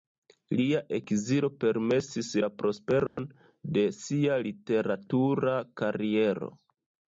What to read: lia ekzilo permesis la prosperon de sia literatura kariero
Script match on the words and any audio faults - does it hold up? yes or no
no